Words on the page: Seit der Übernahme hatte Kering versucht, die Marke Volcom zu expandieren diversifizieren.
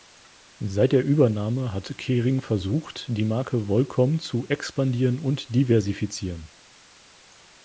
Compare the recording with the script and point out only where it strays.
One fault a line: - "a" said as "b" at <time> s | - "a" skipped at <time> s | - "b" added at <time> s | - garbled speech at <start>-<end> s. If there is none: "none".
- "hatte" said as "hat" at 1.7 s
- "und" added at 5.2 s